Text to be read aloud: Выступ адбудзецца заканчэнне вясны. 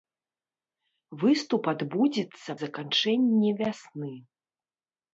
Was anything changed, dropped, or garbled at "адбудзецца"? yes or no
no